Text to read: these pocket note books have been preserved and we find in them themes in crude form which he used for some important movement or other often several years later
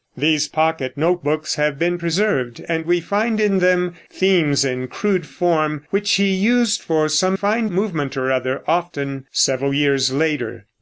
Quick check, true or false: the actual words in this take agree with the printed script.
false